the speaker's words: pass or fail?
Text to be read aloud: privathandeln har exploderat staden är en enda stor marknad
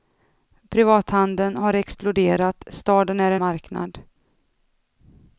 fail